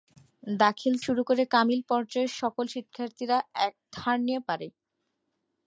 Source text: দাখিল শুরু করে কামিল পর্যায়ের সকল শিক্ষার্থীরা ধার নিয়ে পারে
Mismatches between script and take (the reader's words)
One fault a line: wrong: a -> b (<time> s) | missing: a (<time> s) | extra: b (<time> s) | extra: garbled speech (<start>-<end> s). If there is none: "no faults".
no faults